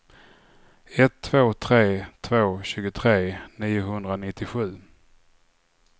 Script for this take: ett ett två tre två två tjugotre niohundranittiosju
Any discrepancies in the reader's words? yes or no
yes